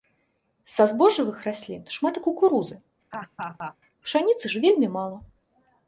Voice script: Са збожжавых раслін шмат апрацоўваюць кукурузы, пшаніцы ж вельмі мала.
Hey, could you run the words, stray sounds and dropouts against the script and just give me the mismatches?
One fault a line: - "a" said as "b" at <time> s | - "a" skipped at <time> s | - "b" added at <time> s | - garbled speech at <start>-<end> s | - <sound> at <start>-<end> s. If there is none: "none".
- "апрацоўваюць" skipped at 2.2 s
- laugh at 3.1-3.8 s